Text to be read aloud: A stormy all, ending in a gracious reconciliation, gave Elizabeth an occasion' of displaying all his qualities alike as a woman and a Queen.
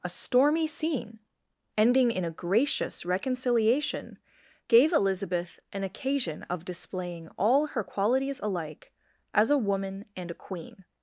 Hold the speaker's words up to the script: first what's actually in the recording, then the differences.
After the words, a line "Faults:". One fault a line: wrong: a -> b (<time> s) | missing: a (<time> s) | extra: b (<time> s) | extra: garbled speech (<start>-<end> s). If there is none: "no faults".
A stormy scene, ending in a gracious reconciliation, gave Elizabeth an occasion' of displaying all her qualities alike as a woman and a Queen.
Faults:
wrong: all -> scene (0.7 s)
wrong: his -> her (7.7 s)